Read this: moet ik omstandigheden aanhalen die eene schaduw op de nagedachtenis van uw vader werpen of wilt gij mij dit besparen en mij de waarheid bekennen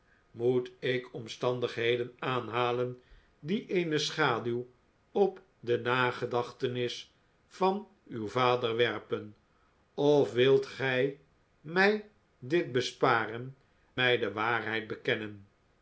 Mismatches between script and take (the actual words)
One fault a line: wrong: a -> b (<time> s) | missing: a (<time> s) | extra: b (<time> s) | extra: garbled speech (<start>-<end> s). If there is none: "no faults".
missing: en (13.6 s)